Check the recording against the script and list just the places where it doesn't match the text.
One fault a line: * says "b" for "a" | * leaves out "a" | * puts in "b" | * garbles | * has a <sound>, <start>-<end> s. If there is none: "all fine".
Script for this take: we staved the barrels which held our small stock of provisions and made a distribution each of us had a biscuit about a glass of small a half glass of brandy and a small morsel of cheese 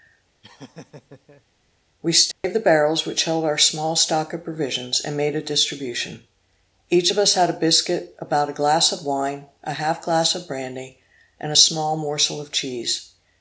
* has a laugh, 0.4-1.4 s
* has a dropout, 2.3-2.4 s
* says "wine" for "small"